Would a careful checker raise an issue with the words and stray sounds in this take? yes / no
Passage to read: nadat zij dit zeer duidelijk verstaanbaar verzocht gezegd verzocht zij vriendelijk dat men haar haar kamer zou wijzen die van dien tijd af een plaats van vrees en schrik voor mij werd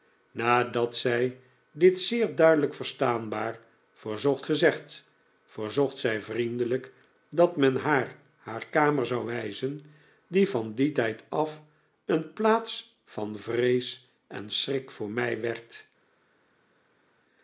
no